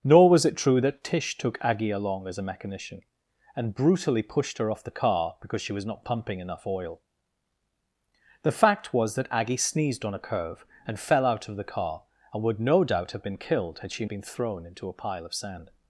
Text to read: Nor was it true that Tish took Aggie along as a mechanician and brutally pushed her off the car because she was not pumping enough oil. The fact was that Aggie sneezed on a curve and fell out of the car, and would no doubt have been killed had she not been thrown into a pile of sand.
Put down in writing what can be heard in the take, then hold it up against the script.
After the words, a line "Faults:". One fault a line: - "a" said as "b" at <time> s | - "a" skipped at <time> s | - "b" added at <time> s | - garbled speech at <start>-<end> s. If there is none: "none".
Nor was it true that Tish took Aggie along as a mechanician and brutally pushed her off the car because she was not pumping enough oil. The fact was that Aggie sneezed on a curve and fell out of the car, and would no doubt have been killed had she been thrown into a pile of sand.
Faults:
- "not" skipped at 14.1 s